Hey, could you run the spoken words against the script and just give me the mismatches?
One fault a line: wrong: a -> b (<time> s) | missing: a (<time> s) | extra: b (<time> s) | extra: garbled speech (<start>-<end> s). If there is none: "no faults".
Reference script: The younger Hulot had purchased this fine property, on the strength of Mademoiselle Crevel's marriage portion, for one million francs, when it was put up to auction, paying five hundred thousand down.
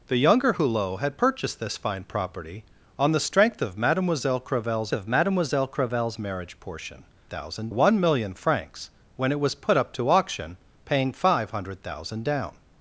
extra: of Mademoiselle Crevel's (4.9 s)
wrong: for -> thousand (7.3 s)